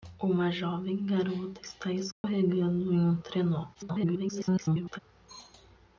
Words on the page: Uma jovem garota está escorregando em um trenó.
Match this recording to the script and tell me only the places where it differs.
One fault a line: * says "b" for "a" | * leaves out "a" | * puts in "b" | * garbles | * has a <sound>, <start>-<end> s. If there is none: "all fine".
* has a dropout, 2.1-2.2 s
* garbles